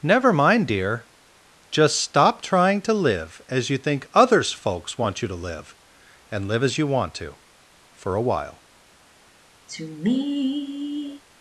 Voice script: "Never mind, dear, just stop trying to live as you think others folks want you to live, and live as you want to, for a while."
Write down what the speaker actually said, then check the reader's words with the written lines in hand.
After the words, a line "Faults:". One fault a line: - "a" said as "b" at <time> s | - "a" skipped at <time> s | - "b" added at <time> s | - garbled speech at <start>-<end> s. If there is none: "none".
"Never mind, dear, just stop trying to live as you think others folks want you to live, and live as you want to, for a while."
Faults:
none